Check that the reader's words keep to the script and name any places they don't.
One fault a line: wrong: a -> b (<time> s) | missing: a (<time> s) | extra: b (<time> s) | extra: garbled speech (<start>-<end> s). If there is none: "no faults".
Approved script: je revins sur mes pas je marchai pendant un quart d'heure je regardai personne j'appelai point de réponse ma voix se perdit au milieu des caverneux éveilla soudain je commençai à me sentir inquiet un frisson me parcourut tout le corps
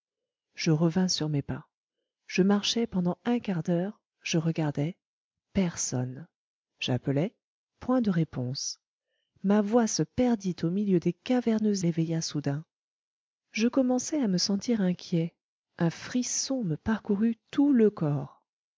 no faults